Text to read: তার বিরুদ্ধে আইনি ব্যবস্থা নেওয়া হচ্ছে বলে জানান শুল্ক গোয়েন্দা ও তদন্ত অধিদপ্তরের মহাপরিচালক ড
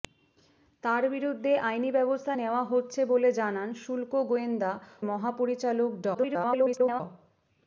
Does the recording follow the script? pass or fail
fail